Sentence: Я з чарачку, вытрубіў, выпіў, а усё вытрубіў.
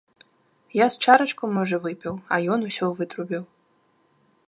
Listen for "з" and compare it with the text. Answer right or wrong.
right